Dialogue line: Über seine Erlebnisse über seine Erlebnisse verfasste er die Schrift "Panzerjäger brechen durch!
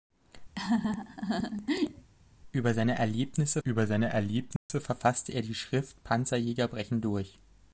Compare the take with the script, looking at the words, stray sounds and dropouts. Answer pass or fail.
fail